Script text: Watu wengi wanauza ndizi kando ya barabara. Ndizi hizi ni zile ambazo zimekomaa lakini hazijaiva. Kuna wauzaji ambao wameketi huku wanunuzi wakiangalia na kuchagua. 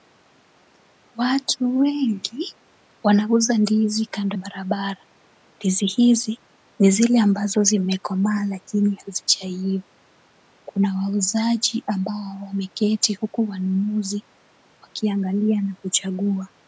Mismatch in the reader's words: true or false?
true